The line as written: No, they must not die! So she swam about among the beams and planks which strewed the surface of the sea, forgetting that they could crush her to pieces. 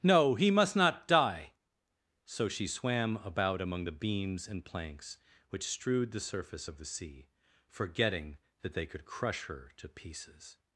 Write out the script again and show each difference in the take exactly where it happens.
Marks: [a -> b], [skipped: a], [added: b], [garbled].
No, [they -> he] must not die! So she swam about among the beams and planks which strewed the surface of the sea, forgetting that they could crush her to pieces.